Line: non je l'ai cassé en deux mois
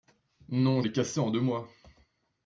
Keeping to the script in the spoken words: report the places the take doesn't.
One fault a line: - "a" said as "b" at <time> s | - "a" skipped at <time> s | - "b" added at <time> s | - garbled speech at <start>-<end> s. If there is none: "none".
- "je" skipped at 0.8 s